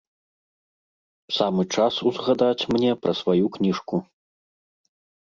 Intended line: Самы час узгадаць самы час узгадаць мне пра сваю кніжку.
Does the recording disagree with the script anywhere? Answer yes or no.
yes